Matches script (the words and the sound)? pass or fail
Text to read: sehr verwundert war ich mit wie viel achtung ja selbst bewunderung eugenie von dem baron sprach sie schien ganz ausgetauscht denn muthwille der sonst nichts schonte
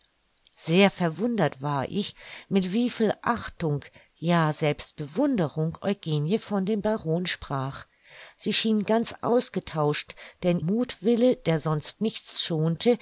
pass